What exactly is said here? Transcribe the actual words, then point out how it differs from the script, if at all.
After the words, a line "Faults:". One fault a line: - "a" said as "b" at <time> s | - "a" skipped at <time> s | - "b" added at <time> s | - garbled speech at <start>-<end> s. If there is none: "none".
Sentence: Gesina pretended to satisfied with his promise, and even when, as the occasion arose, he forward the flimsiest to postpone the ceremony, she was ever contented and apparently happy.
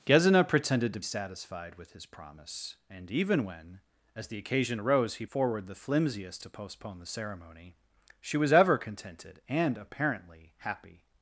Gesina pretended to satisfied with his promise, and even when, as the occasion arose, he forward the flimsiest to postpone the ceremony, she was ever contented and apparently happy.
Faults:
none